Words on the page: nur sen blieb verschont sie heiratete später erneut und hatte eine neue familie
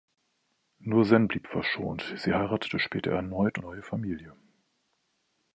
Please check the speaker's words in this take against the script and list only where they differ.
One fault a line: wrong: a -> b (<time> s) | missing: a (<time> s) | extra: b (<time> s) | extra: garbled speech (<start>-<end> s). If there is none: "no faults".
missing: und hatte eine (3.6 s)